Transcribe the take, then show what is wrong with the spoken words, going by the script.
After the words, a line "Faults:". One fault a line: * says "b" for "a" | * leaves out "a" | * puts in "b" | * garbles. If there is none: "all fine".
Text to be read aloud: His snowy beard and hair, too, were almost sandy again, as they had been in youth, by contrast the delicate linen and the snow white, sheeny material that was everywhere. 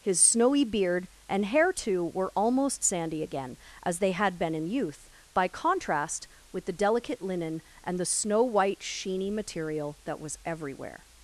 His snowy beard and hair, too, were almost sandy again, as they had been in youth, by contrast with the delicate linen and the snow white, sheeny material that was everywhere.
Faults:
* puts in "with"